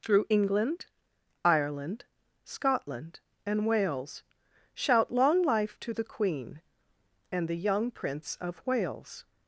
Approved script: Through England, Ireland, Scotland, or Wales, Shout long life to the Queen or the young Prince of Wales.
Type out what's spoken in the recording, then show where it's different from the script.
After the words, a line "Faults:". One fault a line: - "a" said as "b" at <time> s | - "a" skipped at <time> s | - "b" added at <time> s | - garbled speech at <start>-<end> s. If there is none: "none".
Through England, Ireland, Scotland, and Wales, Shout long life to the Queen and the young Prince of Wales.
Faults:
- "or" said as "and" at 3.4 s
- "or" said as "and" at 7.3 s